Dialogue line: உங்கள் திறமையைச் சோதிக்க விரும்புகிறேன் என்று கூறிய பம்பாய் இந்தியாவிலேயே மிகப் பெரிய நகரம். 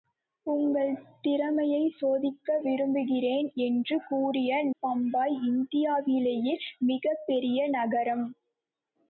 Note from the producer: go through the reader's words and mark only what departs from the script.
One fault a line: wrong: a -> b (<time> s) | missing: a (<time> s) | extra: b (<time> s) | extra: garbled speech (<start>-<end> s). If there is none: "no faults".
no faults